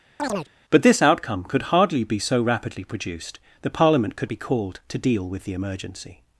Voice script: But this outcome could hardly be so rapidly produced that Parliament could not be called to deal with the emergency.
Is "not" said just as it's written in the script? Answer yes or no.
no